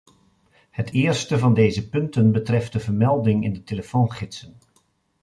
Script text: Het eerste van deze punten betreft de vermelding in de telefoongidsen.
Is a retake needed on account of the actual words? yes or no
no